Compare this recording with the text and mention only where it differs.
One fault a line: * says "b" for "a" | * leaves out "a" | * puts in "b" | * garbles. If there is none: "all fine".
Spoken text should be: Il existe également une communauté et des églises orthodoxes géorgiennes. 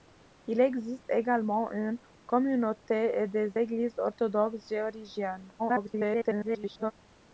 * garbles